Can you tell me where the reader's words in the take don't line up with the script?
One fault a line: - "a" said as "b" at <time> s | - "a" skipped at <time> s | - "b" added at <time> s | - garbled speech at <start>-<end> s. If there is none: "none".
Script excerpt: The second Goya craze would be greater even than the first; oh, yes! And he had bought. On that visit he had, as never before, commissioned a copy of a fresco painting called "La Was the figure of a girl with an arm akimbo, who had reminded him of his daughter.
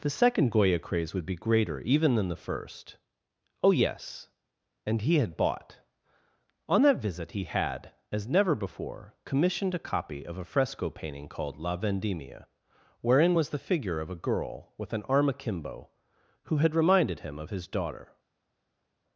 - "Vendimia wherein" added at 11.8 s